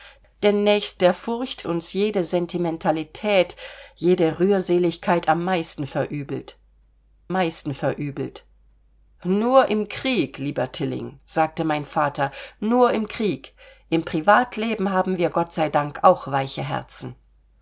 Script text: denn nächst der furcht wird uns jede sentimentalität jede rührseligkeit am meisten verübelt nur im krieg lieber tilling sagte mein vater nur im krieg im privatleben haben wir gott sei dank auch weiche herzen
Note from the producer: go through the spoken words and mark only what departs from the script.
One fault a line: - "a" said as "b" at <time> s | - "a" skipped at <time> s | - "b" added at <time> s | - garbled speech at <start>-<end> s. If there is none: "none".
- "wird" skipped at 1.7 s
- "meisten verübelt" added at 7.3 s